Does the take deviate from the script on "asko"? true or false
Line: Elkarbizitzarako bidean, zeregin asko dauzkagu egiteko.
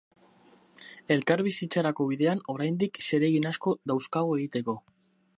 false